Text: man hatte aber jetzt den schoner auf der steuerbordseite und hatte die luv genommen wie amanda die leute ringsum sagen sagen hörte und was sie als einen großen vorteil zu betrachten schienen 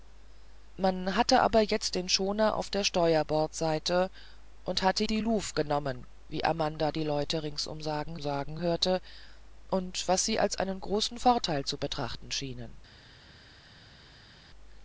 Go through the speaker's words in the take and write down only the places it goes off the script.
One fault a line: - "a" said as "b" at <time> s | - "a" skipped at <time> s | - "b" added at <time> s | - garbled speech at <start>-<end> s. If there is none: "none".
none